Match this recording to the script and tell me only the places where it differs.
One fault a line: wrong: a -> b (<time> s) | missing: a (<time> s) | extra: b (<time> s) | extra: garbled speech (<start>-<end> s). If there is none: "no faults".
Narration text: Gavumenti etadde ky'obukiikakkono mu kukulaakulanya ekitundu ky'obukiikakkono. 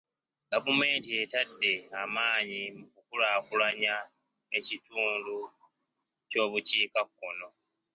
wrong: ky'obukiikakkono -> amaanyi (2.0 s)